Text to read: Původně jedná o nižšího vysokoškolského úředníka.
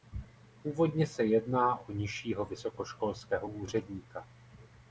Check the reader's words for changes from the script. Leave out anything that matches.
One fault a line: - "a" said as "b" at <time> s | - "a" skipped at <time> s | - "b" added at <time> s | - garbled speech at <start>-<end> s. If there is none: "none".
- "se" added at 1.1 s